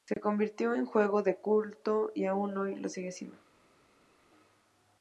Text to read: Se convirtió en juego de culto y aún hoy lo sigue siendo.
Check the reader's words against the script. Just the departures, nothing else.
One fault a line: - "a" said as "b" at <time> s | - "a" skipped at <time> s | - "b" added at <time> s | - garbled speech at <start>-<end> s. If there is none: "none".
none